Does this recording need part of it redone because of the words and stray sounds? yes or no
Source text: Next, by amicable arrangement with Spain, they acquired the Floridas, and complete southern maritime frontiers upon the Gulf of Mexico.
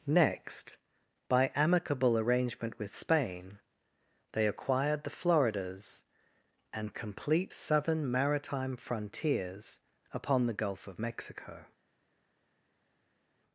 no